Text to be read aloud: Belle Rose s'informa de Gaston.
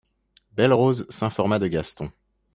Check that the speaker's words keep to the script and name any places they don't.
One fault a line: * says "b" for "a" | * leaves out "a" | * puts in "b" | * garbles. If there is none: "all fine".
all fine